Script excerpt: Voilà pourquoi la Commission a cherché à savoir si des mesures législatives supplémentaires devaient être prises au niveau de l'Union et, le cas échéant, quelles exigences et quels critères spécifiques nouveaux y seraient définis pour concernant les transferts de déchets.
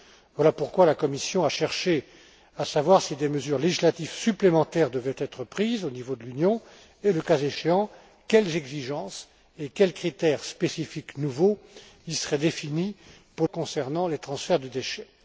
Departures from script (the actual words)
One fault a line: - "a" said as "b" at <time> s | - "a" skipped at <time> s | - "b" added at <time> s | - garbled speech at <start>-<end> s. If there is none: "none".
none